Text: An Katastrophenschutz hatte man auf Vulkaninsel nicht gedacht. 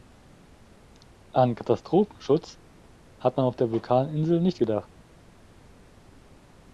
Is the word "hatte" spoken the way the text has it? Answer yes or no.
no